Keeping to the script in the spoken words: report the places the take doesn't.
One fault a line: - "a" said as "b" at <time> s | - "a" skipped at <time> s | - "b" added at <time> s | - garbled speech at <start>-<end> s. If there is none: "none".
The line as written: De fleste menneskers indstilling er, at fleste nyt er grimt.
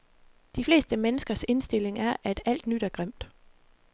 - "fleste" said as "alt" at 2.4 s